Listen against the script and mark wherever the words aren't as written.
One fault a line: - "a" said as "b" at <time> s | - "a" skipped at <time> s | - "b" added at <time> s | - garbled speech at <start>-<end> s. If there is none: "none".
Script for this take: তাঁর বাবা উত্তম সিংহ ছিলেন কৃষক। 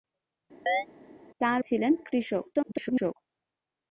- "বাবা উত্তম সিংহ" skipped at 1.6 s
- garbled speech at 2.5-3.1 s